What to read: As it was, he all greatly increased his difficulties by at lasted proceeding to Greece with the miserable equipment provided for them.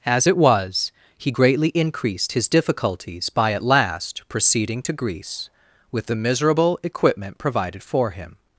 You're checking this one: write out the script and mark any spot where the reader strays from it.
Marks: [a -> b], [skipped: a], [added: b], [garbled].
As it was, he [skipped: all] greatly increased his difficulties by at [lasted -> last] proceeding to Greece with the miserable equipment provided for [them. -> him]